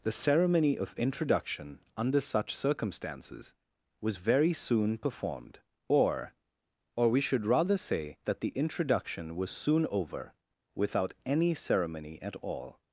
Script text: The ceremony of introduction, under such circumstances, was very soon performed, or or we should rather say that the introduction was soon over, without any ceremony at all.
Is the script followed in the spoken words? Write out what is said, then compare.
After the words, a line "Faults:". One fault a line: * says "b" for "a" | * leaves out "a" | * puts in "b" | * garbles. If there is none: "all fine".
The ceremony of introduction, under such circumstances, was very soon performed, or or we should rather say that the introduction was soon over, without any ceremony at all.
Faults:
all fine